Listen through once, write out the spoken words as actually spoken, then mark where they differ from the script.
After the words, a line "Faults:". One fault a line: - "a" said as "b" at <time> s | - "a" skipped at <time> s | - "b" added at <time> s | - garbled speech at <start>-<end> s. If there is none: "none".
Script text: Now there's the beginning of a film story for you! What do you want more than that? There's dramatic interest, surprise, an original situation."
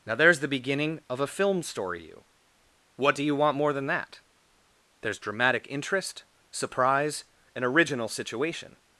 Now there's the beginning of a film story you! What do you want more than that? There's dramatic interest, surprise, an original situation."
Faults:
- "for" skipped at 2.0 s